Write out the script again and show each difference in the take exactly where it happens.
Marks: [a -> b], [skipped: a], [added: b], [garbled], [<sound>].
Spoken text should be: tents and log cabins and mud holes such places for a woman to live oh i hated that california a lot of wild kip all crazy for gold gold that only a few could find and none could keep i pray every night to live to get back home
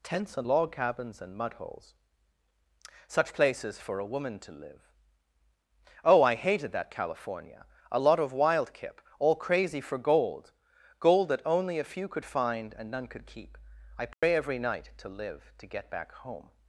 tents and log cabins and mud holes such places for a woman to live oh i hated that california a lot of wild kip all crazy for gold gold that only a few could find and none could keep i pray [dropout] every night to live to get back home